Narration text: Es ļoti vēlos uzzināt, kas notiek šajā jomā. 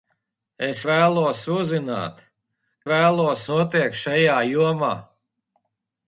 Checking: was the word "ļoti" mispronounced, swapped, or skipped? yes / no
yes